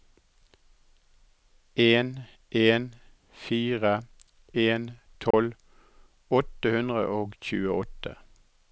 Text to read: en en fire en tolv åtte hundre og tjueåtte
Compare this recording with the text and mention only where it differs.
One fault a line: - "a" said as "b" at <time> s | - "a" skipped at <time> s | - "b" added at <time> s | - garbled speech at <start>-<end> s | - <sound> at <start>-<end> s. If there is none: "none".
- dropout at 5.3-5.3 s